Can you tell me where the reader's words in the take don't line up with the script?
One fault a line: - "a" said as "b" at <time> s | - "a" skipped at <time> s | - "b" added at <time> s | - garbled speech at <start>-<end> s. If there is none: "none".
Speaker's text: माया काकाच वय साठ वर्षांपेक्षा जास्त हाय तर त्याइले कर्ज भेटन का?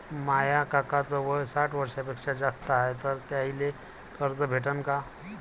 none